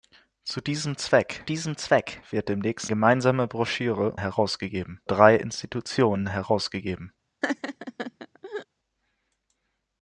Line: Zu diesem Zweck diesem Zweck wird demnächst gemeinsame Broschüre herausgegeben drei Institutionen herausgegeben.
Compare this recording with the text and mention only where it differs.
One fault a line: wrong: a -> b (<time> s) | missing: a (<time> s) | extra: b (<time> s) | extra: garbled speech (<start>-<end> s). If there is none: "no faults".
no faults